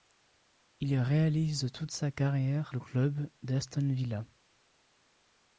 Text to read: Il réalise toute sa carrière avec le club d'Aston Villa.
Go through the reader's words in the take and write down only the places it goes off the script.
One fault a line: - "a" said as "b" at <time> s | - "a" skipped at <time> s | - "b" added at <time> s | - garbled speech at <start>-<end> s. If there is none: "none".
- "avec" skipped at 2.8 s